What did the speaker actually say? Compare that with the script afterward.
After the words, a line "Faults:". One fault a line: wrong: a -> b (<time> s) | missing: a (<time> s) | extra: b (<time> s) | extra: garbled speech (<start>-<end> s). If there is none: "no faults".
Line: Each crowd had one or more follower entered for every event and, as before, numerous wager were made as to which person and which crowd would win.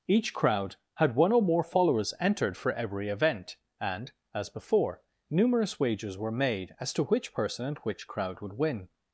Each crowd had one or more followers entered for every event and, as before, numerous wagers were made as to which person and which crowd would win.
Faults:
wrong: follower -> followers (1.6 s)
wrong: wager -> wagers (5.8 s)